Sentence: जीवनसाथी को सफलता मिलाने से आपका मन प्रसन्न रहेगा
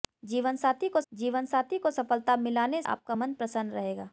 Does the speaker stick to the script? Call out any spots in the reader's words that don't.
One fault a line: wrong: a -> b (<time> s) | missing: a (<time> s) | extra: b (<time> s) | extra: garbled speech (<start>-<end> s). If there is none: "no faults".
extra: जीवनसाथी को (1.1 s)
missing: से (2.8 s)